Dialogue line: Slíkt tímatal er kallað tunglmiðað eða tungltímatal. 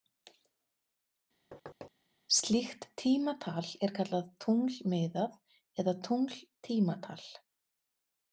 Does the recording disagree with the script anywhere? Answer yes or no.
no